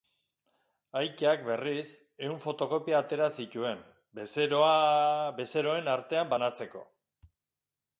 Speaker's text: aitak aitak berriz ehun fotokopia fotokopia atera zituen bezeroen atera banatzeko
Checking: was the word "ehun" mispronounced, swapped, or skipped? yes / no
no